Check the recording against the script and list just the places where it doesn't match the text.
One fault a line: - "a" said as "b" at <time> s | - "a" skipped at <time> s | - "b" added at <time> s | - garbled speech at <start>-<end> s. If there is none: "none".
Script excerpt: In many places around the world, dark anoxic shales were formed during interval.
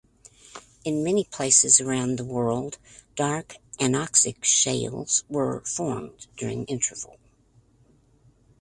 none